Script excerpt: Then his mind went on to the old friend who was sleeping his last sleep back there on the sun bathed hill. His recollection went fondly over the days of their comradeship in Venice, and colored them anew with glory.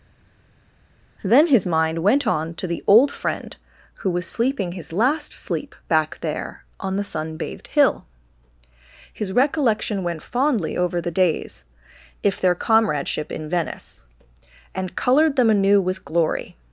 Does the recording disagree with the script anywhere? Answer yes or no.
yes